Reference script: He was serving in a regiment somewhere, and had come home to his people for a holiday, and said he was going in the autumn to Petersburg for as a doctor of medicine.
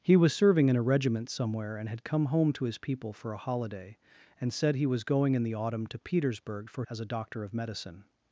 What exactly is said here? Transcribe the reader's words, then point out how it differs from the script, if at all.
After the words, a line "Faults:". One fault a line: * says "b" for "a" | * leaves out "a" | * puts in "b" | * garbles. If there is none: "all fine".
He was serving in a regiment somewhere, and had come home to his people for a holiday, and said he was going in the autumn to Petersburg for as a doctor of medicine.
Faults:
all fine